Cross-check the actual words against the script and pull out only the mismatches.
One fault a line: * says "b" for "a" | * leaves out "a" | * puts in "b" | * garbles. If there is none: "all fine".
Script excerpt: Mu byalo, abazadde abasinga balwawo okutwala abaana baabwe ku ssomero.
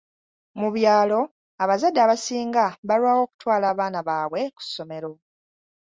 all fine